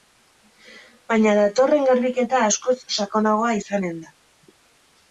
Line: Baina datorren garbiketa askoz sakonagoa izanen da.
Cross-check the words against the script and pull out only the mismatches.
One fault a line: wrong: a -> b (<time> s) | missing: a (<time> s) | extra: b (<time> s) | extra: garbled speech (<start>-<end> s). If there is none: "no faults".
no faults